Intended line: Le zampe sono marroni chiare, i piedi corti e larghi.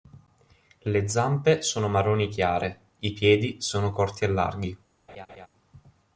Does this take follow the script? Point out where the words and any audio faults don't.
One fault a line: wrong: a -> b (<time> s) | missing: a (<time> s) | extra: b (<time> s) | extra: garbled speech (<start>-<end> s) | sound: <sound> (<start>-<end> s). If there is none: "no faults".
extra: sono (3.6 s)
sound: laugh (5.1-5.5 s)